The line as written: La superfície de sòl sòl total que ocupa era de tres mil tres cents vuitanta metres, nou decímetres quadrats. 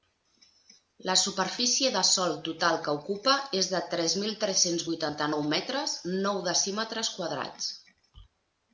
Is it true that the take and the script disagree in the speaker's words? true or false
true